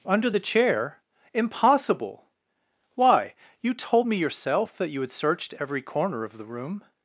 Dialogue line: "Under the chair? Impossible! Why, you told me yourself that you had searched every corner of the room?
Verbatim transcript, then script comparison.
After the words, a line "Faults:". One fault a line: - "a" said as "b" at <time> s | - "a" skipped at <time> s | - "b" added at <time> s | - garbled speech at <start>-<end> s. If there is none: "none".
"Under the chair? Impossible! Why, you told me yourself that you had searched every corner of the room?
Faults:
none